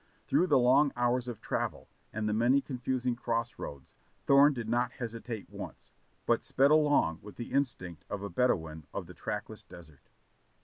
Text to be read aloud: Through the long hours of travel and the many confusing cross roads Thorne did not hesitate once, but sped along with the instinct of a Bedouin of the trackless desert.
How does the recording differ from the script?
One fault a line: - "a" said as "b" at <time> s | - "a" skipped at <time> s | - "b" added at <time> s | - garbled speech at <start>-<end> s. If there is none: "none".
none